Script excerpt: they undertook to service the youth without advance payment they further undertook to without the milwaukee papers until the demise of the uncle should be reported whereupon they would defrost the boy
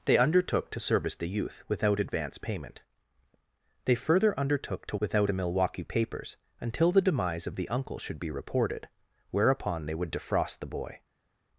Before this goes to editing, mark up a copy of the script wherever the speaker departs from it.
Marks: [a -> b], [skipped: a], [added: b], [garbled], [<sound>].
they undertook to service the youth without advance payment they further undertook to without the milwaukee papers until the demise of the uncle should be reported whereupon they would defrost the boy